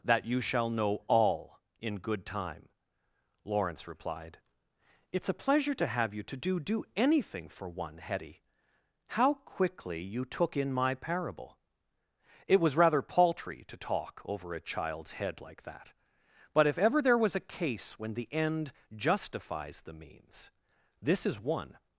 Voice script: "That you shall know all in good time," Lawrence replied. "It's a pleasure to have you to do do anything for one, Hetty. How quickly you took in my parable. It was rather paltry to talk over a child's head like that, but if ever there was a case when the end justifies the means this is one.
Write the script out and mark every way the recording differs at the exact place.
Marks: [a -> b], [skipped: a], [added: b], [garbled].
"That you shall know all in good time," Lawrence replied. "It's a pleasure to have you to do do anything for one, Hetty. How quickly you took in my parable. It was rather paltry to talk over a child's head like that, but if ever there was a case when the end justifies the means this is one.